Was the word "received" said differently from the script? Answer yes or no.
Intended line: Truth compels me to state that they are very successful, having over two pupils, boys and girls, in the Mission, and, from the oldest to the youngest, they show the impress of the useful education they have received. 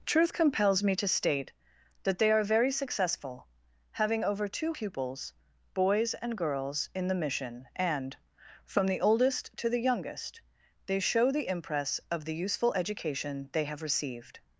no